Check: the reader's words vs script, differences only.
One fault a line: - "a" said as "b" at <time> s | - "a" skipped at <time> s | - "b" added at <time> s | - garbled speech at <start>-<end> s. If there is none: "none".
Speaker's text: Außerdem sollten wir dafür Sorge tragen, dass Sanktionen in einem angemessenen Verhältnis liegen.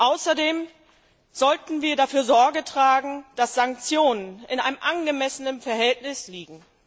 none